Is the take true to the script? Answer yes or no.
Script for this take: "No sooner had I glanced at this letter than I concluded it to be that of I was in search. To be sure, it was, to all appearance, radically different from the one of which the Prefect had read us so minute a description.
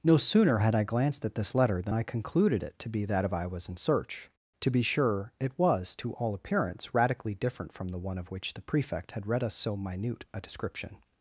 yes